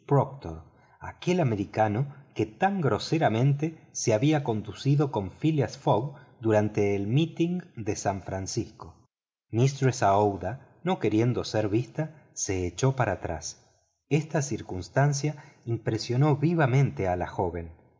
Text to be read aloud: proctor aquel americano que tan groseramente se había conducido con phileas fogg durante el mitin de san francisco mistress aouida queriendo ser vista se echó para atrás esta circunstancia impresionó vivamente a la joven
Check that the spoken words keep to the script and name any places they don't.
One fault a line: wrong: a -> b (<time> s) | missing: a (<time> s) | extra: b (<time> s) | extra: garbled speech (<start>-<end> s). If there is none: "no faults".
extra: no (10.8 s)